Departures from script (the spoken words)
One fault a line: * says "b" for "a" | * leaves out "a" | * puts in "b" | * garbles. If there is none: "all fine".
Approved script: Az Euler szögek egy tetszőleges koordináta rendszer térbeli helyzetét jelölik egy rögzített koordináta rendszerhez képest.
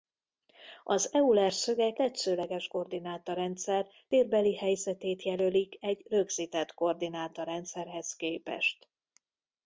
* leaves out "egy"